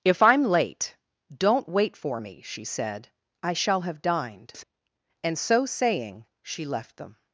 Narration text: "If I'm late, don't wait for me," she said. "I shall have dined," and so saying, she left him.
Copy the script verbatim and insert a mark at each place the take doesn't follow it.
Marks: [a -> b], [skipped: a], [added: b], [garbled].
"If I'm late, don't wait for me," she said. "I shall have dined," and so saying, she left [him. -> them]